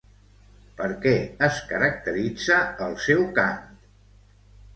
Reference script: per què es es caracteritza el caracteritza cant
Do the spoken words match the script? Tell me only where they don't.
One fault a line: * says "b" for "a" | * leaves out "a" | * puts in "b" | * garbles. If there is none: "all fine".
* leaves out "es"
* says "seu" for "caracteritza"